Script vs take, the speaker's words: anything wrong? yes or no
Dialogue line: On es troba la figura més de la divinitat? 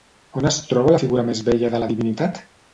yes